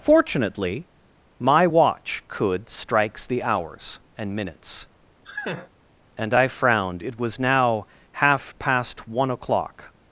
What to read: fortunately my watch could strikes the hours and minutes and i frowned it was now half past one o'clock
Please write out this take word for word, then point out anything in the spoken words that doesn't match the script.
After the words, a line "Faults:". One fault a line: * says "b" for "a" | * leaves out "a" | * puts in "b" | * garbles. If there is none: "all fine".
fortunately my watch could strikes the hours and minutes and i frowned it was now half past one o'clock
Faults:
all fine